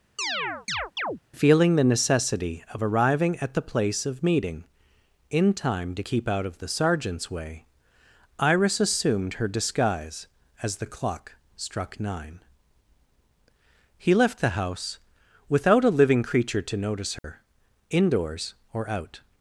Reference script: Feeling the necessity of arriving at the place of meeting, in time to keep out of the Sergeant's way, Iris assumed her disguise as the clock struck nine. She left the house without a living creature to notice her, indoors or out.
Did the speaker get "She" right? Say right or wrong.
wrong